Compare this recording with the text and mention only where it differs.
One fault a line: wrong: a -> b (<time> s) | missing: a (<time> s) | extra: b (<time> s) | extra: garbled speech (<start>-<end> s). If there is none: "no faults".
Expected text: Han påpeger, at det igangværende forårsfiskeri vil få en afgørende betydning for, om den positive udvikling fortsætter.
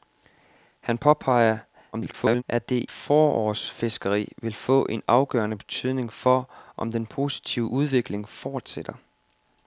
extra: garbled speech (1.9-2.4 s)
missing: igangværende (2.9 s)